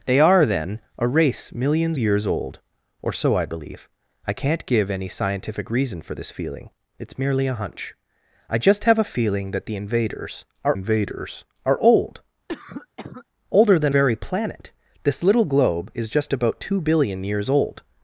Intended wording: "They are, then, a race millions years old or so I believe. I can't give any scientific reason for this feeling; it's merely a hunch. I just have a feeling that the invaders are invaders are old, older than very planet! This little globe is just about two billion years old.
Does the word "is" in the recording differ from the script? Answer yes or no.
no